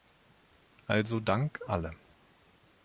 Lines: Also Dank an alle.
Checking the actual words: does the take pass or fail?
fail